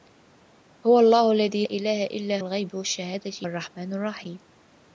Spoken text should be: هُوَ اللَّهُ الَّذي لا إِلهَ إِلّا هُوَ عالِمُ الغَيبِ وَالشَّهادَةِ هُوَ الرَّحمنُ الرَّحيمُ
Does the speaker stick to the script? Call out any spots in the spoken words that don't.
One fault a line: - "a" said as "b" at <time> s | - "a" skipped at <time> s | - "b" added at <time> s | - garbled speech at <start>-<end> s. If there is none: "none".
- "لا" skipped at 1.6 s
- "هُوَ عالِمُ" skipped at 2.4 s
- "هُوَ" skipped at 3.3 s